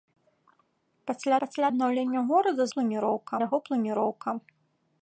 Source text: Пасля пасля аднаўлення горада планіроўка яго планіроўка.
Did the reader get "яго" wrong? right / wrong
right